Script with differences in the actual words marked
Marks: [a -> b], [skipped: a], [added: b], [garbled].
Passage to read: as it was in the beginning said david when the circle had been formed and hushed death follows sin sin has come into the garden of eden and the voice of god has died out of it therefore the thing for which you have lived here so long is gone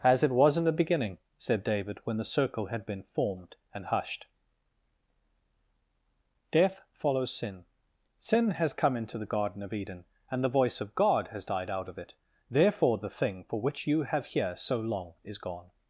as it was in the beginning said david when the circle had been formed and hushed death follows sin sin has come into the garden of eden and the voice of god has died out of it therefore the thing for which you have [skipped: lived] here so long is gone